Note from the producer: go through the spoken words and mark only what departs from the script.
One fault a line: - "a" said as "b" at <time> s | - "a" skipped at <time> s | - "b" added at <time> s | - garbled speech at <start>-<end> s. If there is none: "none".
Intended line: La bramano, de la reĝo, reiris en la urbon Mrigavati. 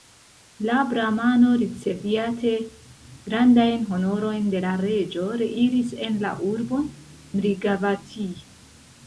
- "riceviate grandajn honorojn" added at 1.6 s